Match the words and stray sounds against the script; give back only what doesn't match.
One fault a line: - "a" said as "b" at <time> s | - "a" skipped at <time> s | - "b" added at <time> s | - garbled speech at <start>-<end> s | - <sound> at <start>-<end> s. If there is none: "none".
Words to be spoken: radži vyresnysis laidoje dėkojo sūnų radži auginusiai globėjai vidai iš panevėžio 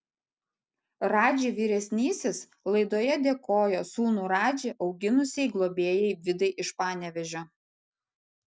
none